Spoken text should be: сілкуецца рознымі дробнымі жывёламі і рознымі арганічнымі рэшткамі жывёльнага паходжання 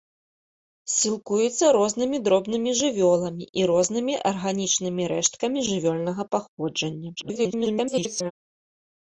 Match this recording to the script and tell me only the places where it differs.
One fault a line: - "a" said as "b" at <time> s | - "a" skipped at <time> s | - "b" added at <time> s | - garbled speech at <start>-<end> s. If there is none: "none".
- garbled speech at 7.2-8.3 s